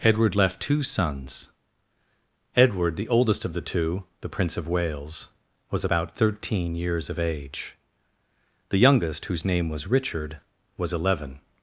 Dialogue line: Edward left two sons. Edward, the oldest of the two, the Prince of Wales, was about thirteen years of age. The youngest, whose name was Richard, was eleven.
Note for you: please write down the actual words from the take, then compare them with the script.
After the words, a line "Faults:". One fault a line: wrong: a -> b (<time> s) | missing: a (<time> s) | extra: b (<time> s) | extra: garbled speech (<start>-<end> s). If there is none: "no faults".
Edward left two sons. Edward, the oldest of the two, the Prince of Wales, was about thirteen years of age. The youngest, whose name was Richard, was eleven.
Faults:
no faults